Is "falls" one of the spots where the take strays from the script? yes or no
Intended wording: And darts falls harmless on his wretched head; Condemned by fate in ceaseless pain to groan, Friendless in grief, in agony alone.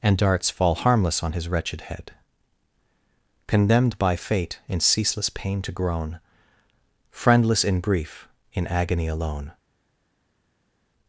yes